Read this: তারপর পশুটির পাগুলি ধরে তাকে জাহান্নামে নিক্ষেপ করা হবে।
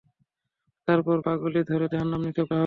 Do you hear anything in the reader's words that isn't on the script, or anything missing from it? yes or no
yes